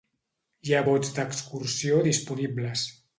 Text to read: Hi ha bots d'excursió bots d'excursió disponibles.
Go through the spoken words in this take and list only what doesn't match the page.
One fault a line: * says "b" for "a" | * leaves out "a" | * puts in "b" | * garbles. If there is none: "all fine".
* leaves out "bots d'excursió"